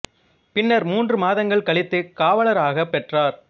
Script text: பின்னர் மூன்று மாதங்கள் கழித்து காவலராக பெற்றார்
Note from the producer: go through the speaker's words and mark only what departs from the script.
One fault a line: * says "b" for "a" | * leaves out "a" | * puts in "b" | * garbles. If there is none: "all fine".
all fine